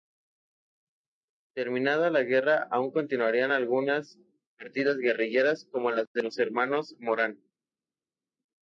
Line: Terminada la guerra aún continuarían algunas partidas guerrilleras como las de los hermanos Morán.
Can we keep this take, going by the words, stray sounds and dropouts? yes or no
yes